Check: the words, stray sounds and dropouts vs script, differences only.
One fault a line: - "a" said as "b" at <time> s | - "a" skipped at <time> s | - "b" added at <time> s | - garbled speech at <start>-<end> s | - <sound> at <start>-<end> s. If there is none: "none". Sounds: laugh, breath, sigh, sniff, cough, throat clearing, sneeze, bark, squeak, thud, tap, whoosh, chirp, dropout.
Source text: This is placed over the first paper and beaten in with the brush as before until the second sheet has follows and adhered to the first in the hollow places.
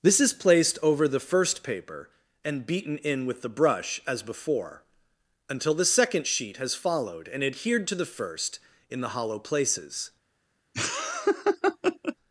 - "follows" said as "followed" at 6.7 s
- laugh at 10.7-12.2 s